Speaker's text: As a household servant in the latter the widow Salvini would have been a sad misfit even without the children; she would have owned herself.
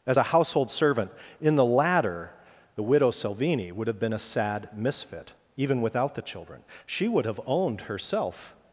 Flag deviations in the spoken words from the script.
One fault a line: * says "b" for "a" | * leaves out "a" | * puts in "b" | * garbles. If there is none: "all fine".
all fine